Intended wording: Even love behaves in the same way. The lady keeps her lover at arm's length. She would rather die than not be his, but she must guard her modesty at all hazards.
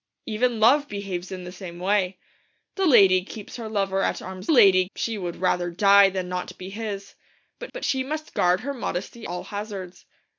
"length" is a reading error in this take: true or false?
true